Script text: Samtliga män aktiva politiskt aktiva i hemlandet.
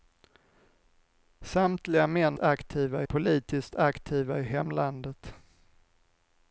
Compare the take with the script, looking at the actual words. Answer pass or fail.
pass